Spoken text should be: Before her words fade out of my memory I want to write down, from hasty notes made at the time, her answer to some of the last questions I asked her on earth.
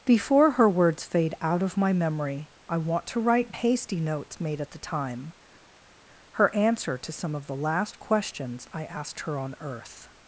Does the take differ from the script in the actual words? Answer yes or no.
yes